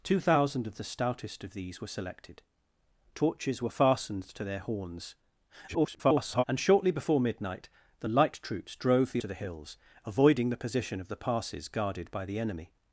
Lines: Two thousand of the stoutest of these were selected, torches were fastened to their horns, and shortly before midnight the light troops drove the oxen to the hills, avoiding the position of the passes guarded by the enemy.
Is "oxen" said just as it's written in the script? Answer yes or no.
no